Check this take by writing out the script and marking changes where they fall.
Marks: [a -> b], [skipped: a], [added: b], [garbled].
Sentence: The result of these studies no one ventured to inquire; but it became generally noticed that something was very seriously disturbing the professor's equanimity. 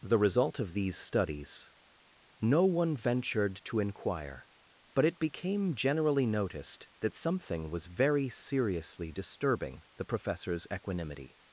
The result of these studies no one ventured to inquire; but it became generally noticed that something was very seriously disturbing the professor's equanimity.